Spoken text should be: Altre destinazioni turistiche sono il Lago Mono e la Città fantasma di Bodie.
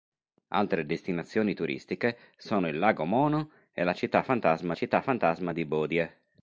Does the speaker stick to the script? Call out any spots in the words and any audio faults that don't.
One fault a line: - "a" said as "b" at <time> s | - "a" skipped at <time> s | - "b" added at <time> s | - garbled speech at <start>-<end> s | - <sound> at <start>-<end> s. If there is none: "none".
- "Città fantasma" added at 4.7 s